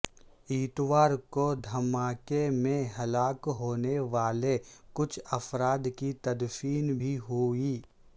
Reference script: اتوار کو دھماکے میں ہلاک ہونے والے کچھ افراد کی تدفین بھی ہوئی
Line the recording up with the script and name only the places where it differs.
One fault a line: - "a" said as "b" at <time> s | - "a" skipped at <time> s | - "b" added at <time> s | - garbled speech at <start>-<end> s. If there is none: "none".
none